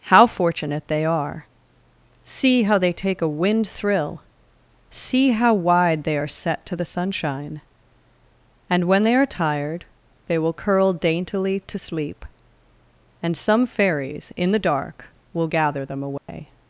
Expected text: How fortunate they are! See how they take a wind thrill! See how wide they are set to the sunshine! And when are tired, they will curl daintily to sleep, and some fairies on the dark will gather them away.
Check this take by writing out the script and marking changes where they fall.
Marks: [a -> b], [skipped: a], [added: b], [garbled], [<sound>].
How fortunate they are! See how they take a wind thrill! See how wide they are set to the sunshine! And when [added: they] are tired, they will curl daintily to sleep, and some fairies [on -> in] the dark will gather them away. [dropout]